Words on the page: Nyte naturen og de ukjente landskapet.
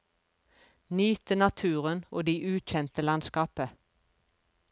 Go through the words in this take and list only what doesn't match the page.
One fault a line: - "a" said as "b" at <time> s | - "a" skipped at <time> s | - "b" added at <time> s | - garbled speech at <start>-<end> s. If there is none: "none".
none